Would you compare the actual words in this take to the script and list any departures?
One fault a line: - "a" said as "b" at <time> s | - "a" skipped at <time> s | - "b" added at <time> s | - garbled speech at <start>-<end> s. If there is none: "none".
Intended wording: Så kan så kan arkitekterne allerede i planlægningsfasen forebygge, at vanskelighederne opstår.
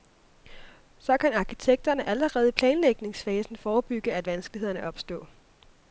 - "så kan" skipped at 1.3 s